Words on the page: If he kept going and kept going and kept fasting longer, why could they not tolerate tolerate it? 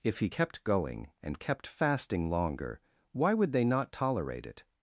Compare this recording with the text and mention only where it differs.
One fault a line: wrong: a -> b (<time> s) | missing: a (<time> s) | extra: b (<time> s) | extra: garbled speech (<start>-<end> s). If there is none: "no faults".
missing: going and kept (1.7 s)
wrong: could -> would (3.3 s)
missing: tolerate (4.5 s)